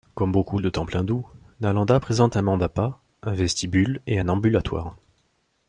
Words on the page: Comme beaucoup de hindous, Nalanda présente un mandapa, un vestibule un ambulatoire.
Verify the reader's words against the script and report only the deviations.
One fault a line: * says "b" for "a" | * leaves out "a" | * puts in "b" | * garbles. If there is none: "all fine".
* puts in "temples"
* puts in "et"